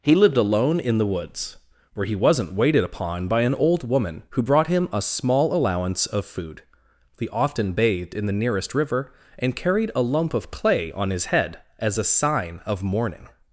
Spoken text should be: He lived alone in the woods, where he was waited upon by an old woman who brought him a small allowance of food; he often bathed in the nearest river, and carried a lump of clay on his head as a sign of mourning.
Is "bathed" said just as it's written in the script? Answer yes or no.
yes